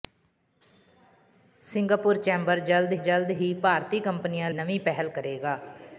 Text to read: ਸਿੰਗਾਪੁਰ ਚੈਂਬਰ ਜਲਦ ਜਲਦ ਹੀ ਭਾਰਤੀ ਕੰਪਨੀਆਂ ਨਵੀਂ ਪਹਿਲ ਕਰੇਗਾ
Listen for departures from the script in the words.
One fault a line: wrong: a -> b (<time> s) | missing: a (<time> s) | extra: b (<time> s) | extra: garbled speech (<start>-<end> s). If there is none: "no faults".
no faults